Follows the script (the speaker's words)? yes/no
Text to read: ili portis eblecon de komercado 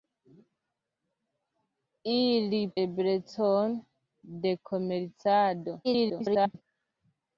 no